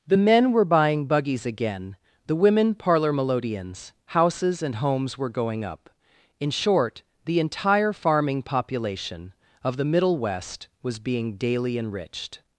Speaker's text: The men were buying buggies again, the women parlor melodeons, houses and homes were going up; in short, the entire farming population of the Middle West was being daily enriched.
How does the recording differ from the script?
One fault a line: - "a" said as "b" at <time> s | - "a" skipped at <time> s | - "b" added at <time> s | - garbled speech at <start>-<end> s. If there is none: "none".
none